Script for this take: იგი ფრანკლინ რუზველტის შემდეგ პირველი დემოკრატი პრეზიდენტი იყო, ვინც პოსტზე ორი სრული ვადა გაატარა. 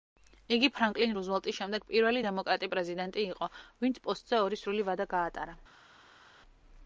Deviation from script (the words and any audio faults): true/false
false